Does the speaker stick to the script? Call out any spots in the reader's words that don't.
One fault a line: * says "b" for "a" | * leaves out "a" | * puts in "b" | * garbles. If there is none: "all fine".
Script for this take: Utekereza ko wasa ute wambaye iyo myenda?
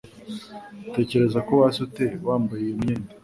all fine